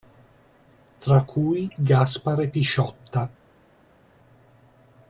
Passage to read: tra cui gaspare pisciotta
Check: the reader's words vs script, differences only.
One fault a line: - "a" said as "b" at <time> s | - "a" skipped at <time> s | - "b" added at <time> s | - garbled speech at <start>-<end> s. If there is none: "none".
none